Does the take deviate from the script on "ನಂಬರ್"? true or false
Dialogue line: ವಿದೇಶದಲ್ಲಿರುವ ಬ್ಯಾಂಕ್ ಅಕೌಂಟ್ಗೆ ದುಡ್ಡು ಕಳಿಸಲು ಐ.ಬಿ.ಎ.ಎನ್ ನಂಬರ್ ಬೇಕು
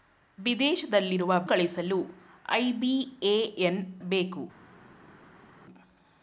true